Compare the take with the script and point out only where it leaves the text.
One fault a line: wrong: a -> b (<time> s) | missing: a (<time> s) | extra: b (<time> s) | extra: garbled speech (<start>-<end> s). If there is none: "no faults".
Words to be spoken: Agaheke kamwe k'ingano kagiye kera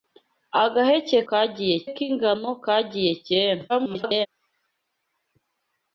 wrong: kamwe -> kagiye (1.3 s)
extra: garbled speech (3.7-4.3 s)